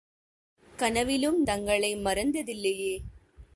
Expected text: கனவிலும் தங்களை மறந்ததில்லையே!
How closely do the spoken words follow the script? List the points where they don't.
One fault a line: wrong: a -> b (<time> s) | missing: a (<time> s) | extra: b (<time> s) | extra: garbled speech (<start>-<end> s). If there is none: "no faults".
no faults